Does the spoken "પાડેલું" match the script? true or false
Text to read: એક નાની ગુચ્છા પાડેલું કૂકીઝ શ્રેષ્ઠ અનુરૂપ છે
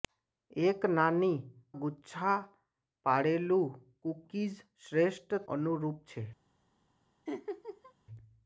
true